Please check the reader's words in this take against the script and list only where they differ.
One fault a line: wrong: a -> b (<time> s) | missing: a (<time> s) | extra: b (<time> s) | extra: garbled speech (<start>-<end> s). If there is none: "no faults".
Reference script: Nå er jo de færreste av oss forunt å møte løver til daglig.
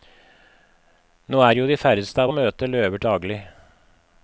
missing: oss forunt (2.3 s)
missing: til (3.0 s)